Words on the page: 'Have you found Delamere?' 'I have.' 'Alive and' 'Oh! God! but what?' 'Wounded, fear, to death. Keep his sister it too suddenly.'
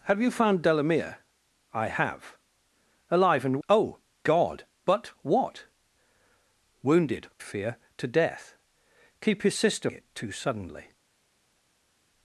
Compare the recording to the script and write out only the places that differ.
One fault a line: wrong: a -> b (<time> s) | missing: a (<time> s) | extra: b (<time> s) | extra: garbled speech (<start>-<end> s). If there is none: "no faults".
no faults